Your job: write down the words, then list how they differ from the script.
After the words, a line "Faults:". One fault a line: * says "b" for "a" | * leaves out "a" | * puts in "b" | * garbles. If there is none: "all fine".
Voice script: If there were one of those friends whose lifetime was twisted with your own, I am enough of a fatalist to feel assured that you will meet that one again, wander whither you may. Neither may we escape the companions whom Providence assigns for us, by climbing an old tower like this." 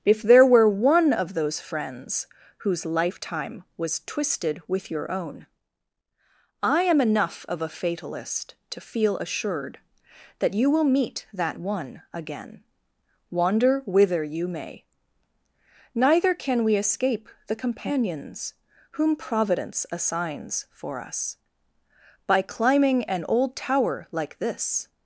If there were one of those friends whose lifetime was twisted with your own, I am enough of a fatalist to feel assured that you will meet that one again, wander whither you may. Neither can we escape the companions whom Providence assigns for us, by climbing an old tower like this."
Faults:
* says "can" for "may"